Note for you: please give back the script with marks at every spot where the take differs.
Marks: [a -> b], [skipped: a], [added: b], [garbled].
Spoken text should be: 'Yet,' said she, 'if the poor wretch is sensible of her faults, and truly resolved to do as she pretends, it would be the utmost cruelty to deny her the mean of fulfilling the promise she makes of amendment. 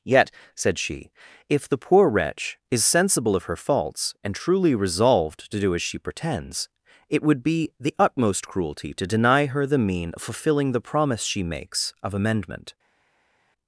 'Yet,' said she, 'if the poor wretch is sensible of her faults, and truly resolved to do as she pretends, it would be the utmost cruelty to deny her the mean of fulfilling the promise she makes of amendment.